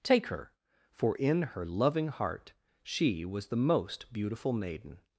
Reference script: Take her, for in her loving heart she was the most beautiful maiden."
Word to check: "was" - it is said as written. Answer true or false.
true